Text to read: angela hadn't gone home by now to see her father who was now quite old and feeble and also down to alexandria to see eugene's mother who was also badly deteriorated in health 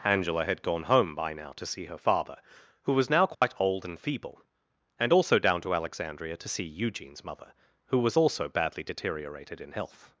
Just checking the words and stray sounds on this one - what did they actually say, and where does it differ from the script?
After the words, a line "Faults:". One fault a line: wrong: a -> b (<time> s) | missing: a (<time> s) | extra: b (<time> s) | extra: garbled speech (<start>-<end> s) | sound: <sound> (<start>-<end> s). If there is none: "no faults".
angela had gone home by now to see her father who was now quite old and feeble and also down to alexandria to see eugene's mother who was also badly deteriorated in health
Faults:
wrong: hadn't -> had (0.5 s)
sound: dropout (3.3-3.4 s)